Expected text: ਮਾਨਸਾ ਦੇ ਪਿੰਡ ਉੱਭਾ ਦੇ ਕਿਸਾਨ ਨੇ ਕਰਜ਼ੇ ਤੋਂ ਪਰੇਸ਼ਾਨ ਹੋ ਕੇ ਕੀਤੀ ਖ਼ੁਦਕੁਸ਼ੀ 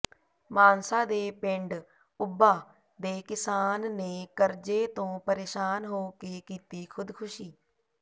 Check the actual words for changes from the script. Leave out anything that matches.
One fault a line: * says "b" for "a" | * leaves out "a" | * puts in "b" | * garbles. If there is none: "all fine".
all fine